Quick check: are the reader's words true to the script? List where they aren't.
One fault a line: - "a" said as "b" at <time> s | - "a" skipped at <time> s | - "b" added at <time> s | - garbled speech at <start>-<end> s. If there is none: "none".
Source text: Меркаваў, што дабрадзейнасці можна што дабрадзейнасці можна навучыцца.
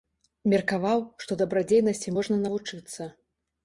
- "што дабрадзейнасці можна" skipped at 2.4 s